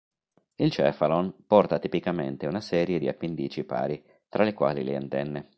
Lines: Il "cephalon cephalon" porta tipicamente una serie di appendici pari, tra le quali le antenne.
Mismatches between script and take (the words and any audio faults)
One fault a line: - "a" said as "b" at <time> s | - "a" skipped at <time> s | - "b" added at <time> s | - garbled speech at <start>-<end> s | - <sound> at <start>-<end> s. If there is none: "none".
- "cephalon" skipped at 1.4 s